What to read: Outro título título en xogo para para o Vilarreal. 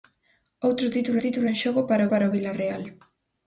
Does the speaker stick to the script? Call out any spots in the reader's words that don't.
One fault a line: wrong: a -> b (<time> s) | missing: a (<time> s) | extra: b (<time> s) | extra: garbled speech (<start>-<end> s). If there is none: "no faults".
no faults